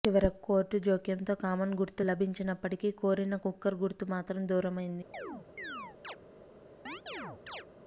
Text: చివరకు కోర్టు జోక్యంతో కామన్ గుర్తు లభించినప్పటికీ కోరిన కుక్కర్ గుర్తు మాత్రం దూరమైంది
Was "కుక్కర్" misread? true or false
false